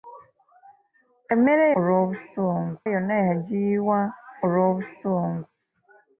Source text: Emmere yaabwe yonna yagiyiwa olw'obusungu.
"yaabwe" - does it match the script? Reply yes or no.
no